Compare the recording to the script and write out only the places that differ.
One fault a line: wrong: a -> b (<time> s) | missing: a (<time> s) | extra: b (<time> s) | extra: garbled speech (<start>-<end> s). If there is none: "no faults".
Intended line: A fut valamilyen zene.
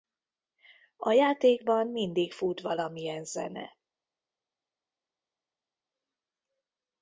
extra: játékban mindig (1.1 s)